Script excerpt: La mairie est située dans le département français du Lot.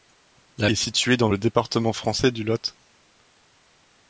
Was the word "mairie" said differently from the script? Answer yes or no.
yes